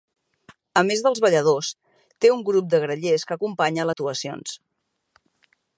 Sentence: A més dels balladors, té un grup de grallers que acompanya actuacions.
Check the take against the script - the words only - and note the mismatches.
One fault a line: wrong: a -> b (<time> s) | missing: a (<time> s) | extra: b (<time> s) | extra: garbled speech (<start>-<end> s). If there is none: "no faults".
no faults